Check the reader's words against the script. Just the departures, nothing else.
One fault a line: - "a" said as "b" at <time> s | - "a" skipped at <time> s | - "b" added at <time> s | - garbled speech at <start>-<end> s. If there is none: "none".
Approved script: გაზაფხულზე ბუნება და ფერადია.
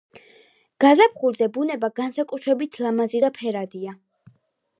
- "განსაკუთრებით ლამაზი" added at 2.0 s